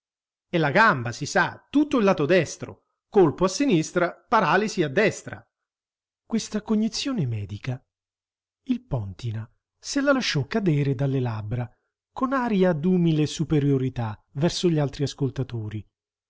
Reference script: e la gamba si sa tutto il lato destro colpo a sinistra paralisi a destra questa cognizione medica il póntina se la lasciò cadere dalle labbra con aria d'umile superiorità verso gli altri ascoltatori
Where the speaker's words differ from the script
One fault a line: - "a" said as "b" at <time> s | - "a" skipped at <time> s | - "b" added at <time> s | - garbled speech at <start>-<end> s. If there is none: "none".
none